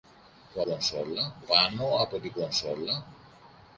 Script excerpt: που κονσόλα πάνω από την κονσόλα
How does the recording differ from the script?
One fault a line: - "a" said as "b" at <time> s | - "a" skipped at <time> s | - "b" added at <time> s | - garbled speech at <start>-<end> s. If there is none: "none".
none